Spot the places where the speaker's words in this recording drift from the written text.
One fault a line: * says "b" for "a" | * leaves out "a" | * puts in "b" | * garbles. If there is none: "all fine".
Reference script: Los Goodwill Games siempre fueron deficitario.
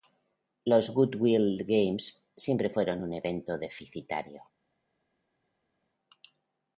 * puts in "un evento"